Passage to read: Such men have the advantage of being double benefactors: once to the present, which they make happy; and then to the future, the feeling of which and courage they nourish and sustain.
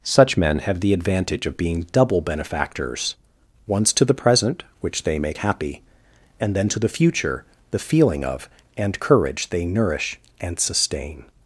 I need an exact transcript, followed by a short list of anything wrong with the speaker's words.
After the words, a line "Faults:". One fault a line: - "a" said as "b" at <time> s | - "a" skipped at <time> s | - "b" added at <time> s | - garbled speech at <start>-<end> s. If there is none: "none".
Such men have the advantage of being double benefactors: once to the present, which they make happy; and then to the future, the feeling of and courage they nourish and sustain.
Faults:
- "which" skipped at 8.5 s